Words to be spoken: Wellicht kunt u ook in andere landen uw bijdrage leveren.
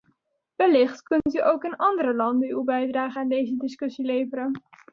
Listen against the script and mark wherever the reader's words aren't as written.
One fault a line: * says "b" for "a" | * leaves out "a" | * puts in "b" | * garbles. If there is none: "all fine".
* puts in "aan deze discussie"